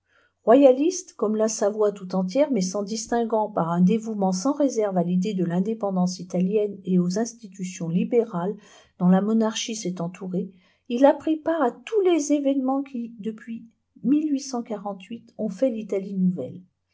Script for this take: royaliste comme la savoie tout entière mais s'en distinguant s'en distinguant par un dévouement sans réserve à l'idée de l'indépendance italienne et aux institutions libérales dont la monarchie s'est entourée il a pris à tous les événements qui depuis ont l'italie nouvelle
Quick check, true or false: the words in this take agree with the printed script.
false